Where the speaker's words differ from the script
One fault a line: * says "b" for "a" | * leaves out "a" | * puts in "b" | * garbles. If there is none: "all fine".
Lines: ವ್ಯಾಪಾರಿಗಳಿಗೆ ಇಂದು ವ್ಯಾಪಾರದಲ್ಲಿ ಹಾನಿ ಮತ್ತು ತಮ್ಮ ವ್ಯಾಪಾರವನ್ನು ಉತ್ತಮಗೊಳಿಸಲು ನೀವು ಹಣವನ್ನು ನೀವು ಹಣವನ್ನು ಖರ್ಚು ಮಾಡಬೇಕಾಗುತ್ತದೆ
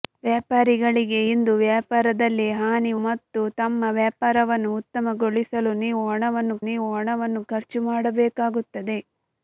all fine